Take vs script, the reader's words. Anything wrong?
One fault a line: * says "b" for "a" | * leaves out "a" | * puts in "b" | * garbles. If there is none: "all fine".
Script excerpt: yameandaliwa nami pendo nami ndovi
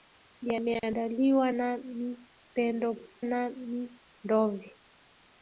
all fine